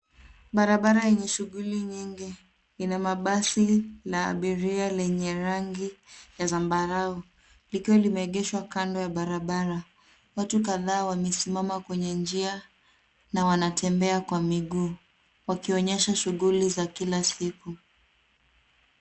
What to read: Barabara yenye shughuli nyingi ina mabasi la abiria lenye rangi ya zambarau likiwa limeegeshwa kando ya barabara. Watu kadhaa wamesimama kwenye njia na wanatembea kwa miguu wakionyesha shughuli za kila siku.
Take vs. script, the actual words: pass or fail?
pass